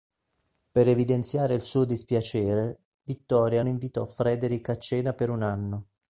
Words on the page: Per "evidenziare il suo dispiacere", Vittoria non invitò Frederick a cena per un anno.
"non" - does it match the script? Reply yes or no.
no